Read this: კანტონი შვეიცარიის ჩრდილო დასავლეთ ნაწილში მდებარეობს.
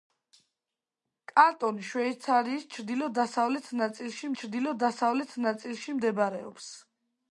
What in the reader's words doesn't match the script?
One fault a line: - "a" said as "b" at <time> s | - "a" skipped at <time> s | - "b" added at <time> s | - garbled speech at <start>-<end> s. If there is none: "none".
- "ჩრდილო დასავლეთ ნაწილში" added at 4.4 s